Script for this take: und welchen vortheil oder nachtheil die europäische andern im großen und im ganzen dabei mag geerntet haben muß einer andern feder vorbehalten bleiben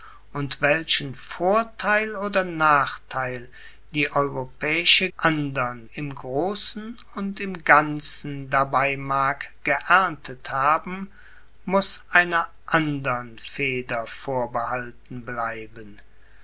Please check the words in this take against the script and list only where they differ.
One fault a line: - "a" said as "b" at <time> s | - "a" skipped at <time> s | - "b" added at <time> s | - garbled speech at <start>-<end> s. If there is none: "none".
none